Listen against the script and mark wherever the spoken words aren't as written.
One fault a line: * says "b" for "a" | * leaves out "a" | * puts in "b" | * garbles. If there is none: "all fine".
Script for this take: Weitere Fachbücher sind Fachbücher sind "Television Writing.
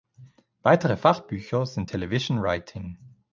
* leaves out "Fachbücher sind"